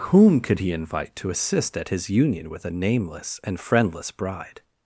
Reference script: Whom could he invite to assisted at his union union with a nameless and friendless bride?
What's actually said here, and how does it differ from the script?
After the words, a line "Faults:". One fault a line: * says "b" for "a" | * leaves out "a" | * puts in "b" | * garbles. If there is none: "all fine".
Whom could he invite to assist at his union with a nameless and friendless bride?
Faults:
* says "assist" for "assisted"
* leaves out "union"